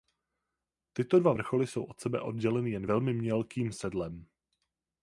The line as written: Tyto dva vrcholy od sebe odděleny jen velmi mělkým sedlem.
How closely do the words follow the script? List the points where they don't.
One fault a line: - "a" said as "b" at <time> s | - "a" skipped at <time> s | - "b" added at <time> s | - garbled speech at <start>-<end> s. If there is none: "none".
- "jsou" added at 1.7 s